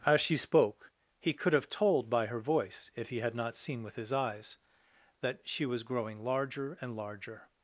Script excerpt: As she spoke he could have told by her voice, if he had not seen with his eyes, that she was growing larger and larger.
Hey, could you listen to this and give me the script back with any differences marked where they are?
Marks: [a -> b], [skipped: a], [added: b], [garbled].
As she spoke he could have told by her voice, if he had not seen with his eyes, that she was growing larger and larger.